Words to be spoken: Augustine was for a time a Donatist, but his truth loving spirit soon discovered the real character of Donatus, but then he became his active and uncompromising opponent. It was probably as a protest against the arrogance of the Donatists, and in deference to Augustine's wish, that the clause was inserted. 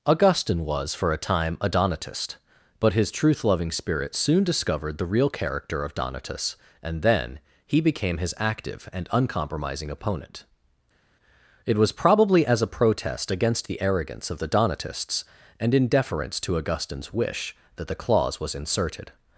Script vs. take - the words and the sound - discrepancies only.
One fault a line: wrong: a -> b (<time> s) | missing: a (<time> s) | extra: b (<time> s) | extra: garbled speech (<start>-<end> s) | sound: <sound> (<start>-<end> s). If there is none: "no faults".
wrong: but -> and (6.8 s)